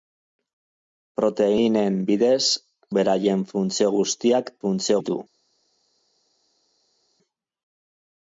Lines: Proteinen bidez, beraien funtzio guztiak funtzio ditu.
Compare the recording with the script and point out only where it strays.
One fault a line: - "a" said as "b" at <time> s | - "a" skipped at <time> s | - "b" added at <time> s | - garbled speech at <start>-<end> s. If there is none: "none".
none